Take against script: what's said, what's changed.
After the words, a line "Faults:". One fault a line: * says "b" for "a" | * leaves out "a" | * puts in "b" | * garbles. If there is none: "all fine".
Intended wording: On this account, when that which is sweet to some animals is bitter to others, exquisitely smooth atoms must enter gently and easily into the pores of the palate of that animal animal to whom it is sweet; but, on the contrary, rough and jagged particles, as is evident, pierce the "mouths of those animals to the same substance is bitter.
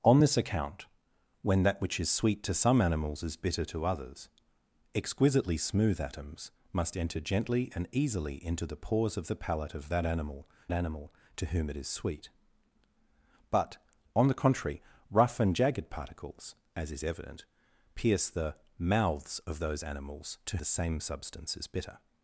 On this account, when that which is sweet to some animals is bitter to others, exquisitely smooth atoms must enter gently and easily into the pores of the palate of that animal animal to whom it is sweet; but, on the contrary, rough and jagged particles, as is evident, pierce the "mouths of those animals to the same substance is bitter.
Faults:
all fine